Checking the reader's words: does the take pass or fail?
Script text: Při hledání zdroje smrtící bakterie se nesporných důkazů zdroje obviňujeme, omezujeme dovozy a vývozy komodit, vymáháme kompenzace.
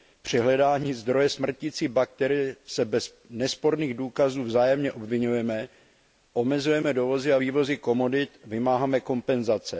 fail